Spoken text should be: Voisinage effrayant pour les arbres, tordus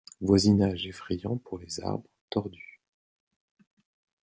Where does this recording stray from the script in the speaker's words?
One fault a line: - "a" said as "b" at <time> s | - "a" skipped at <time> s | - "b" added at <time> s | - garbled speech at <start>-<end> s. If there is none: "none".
none